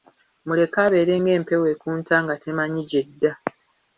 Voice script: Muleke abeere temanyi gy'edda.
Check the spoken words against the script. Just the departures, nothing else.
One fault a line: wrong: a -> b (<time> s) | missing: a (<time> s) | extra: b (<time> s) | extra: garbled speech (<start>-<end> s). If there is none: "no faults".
extra: ng'empewo ekunta nga (1.2 s)